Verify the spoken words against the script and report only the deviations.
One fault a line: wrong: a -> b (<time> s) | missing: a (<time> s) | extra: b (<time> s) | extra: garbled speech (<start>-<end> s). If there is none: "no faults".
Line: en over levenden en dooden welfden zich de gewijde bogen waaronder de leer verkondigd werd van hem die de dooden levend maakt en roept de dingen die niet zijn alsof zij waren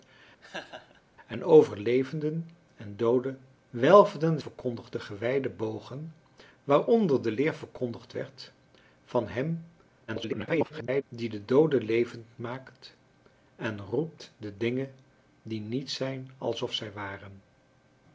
wrong: zich -> verkondigd (4.4 s)
extra: garbled speech (10.1-11.0 s)